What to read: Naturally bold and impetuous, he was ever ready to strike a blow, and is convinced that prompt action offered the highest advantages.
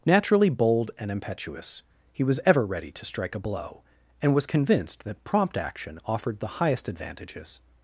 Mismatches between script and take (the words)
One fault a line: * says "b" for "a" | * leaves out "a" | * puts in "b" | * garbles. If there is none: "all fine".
* says "was" for "is"